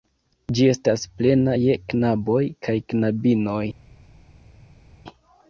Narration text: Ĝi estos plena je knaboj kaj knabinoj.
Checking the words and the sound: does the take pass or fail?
fail